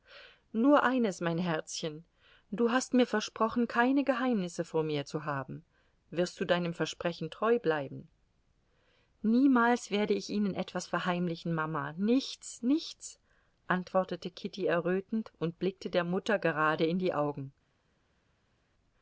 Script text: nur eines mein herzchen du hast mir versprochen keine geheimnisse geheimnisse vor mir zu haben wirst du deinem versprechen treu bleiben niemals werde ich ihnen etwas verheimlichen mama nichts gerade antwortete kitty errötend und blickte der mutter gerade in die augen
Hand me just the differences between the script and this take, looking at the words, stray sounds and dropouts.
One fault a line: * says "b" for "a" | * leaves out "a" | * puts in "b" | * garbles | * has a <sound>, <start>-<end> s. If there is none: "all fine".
* leaves out "geheimnisse"
* says "nichts" for "gerade"